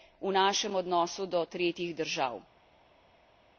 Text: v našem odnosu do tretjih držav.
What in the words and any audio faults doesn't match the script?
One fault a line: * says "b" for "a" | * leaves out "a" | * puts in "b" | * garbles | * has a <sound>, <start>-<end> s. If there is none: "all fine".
all fine